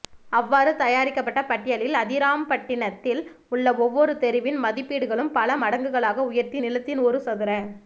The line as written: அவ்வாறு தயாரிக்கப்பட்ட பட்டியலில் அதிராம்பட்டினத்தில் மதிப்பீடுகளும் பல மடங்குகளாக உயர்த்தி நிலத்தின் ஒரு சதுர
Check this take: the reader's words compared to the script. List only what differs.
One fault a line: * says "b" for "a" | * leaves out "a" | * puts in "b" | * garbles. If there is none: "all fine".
* puts in "உள்ள ஒவ்வொரு தெருவின்"